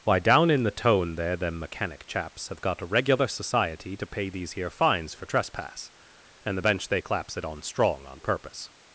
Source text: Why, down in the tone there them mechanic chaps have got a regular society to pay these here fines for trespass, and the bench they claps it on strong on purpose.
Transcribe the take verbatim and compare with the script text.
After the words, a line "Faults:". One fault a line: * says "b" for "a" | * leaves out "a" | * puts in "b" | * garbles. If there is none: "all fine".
Why, down in the tone there them mechanic chaps have got a regular society to pay these here fines for trespass, and the bench they claps it on strong on purpose.
Faults:
all fine